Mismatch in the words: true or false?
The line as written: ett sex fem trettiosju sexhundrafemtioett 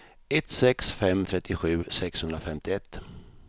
false